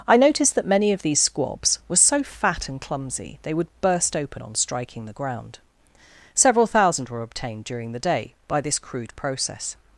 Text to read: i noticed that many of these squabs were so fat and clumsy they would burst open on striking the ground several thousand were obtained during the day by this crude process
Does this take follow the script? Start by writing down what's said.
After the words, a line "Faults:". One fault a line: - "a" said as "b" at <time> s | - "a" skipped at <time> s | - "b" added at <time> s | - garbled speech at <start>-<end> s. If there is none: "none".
i noticed that many of these squabs were so fat and clumsy they would burst open on striking the ground several thousand were obtained during the day by this crude process
Faults:
none